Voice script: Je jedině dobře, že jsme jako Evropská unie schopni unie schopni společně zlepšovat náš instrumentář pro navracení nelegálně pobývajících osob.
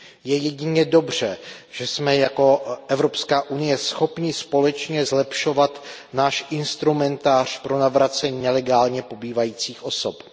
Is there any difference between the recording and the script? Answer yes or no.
yes